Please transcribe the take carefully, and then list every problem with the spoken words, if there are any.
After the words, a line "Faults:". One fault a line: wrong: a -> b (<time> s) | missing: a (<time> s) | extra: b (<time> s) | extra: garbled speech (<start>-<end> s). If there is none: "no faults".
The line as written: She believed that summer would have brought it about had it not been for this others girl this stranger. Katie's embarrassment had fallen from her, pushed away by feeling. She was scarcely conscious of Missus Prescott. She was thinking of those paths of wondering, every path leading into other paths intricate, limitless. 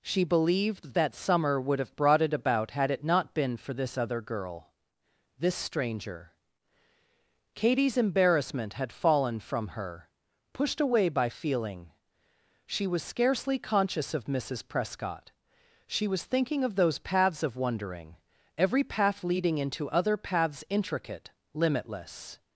She believed that summer would have brought it about had it not been for this other girl this stranger. Katie's embarrassment had fallen from her, pushed away by feeling. She was scarcely conscious of Missus Prescott. She was thinking of those paths of wondering, every path leading into other paths intricate, limitless.
Faults:
wrong: others -> other (4.0 s)